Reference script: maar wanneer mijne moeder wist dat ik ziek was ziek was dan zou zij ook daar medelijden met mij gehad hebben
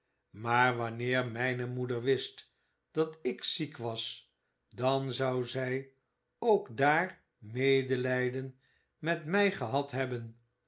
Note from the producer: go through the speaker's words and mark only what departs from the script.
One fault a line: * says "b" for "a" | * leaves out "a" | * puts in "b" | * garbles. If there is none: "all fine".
* leaves out "ziek was"